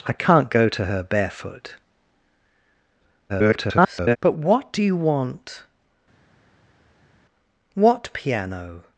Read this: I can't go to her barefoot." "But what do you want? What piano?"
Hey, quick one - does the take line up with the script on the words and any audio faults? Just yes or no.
no